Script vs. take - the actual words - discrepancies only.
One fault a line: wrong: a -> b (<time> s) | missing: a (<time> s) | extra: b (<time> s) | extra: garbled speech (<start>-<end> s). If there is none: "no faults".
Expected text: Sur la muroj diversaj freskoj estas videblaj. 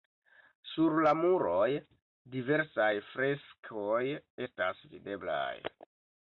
no faults